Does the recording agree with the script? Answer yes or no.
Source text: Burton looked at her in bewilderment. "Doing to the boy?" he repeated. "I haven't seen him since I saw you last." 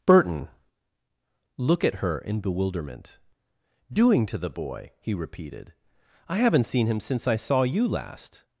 no